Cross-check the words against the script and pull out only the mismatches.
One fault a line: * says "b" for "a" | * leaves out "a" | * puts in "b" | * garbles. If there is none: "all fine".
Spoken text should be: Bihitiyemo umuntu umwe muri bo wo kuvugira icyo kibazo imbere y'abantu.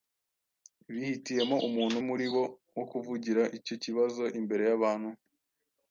* leaves out "umwe"